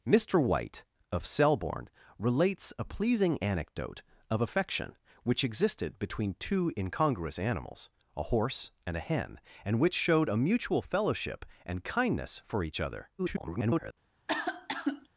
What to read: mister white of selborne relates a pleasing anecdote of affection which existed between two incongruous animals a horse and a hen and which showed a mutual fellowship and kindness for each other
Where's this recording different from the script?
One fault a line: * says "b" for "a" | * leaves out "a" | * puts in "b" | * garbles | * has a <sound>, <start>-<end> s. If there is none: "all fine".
* garbles
* has a cough, 14.3-15.1 s